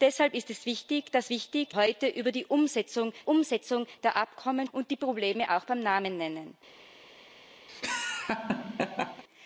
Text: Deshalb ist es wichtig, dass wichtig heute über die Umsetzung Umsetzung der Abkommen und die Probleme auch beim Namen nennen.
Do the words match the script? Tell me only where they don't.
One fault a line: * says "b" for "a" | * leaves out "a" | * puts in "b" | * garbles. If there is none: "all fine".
all fine